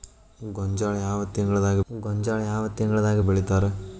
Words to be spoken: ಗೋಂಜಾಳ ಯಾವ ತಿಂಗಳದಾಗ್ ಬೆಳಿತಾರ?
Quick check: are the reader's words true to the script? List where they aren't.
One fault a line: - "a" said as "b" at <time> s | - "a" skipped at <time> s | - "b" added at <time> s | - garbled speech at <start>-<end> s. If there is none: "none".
- "ಗೋಂಜಾಳ ಯಾವ ತಿಂಗಳದಾಗ್" added at 1.9 s